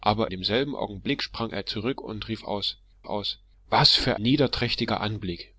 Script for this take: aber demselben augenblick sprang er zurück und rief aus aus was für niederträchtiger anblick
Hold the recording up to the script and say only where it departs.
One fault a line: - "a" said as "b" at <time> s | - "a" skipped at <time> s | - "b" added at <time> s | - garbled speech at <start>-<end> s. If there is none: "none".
none